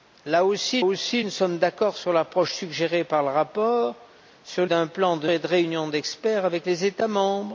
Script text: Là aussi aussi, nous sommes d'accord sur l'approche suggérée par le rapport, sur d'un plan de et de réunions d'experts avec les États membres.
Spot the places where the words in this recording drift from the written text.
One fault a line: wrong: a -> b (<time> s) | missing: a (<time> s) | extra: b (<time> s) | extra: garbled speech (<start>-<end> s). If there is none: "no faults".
no faults